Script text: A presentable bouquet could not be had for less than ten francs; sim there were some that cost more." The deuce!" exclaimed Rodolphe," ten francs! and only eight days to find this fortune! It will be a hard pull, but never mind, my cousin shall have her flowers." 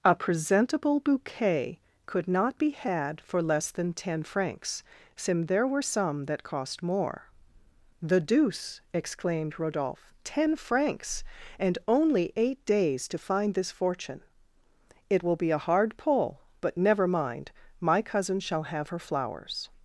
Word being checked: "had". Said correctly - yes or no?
yes